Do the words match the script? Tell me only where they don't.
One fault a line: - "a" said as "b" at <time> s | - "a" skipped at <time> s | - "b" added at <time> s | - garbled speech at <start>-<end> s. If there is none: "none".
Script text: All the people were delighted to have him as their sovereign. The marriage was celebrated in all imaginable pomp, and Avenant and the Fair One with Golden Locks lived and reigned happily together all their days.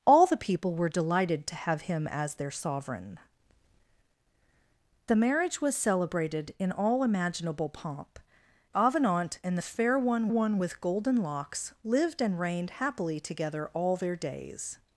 - "and" skipped at 8.2 s
- "One" added at 10.3 s